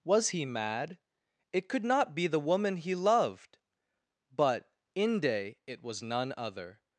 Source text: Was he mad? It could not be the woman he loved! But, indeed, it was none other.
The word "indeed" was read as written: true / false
false